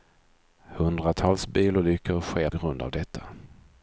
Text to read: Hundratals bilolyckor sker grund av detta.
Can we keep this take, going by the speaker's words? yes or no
yes